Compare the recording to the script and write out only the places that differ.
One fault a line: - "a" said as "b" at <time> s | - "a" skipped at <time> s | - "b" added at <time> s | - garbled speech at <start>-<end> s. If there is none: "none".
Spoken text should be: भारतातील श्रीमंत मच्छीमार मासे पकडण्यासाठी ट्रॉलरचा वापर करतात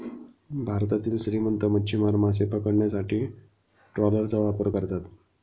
none